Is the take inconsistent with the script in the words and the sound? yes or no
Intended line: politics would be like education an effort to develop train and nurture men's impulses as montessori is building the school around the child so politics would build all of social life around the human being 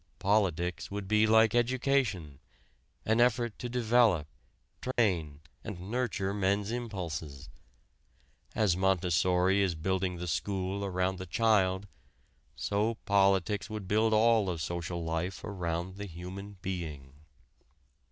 yes